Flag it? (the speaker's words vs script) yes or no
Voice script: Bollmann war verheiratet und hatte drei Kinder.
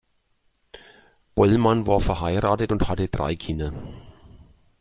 no